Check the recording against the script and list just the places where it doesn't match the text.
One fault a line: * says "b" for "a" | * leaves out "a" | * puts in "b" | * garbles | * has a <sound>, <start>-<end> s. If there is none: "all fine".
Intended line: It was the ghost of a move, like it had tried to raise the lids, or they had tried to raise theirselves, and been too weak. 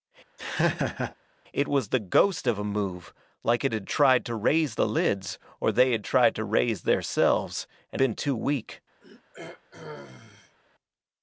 * has a laugh, 0.4-1.2 s
* has a throat clearing, 9.0-10.6 s